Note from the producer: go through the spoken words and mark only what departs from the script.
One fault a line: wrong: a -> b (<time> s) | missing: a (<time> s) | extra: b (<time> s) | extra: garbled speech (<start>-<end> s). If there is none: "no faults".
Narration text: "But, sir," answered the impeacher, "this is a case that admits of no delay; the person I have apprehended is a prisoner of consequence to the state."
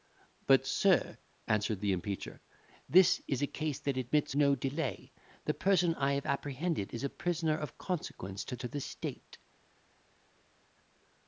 missing: of (4.3 s)
extra: to (8.6 s)